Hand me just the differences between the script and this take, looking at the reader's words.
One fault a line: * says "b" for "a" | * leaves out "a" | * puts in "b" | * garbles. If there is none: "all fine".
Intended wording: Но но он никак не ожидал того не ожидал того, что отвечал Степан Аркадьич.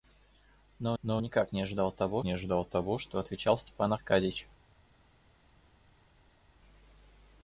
all fine